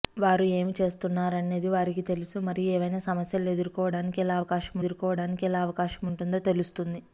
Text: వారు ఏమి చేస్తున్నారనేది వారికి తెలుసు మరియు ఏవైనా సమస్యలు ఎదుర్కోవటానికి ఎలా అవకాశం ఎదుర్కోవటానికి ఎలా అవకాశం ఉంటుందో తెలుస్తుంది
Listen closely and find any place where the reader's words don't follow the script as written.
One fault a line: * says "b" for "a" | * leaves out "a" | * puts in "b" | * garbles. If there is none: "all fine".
all fine